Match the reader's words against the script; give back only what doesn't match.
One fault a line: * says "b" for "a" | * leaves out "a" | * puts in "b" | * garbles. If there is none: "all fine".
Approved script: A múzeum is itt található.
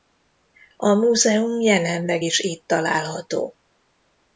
* puts in "jelenleg"